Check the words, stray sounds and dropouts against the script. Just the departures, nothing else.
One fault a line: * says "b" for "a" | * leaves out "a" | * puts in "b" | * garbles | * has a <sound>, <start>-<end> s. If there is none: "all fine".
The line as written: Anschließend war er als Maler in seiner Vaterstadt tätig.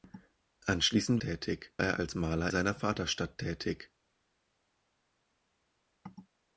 * says "tätig" for "war"
* leaves out "in"